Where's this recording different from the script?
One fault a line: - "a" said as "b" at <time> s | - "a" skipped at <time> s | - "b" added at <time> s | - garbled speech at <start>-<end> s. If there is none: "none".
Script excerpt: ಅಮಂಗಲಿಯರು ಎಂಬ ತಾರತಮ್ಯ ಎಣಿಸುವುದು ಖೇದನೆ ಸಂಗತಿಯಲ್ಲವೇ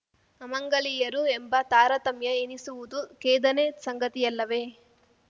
none